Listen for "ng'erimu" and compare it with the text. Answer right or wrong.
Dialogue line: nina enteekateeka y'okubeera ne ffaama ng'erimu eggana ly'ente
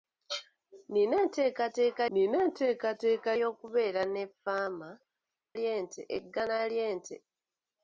wrong